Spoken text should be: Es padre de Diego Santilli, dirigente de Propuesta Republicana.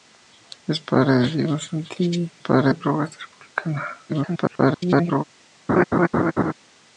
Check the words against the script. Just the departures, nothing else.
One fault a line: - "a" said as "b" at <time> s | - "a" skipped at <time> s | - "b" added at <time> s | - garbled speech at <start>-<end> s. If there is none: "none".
- "dirigente" said as "padre" at 2.4 s
- garbled speech at 4.1-5.2 s